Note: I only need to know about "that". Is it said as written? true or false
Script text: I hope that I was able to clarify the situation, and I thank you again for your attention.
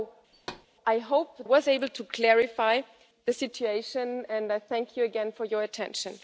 false